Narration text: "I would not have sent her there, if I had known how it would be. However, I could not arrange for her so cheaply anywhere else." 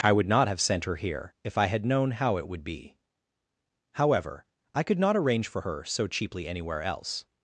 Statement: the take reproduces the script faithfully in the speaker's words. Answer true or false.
false